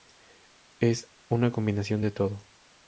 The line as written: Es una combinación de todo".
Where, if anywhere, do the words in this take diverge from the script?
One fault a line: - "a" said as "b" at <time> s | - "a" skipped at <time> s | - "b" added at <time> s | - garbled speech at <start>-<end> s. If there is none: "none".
none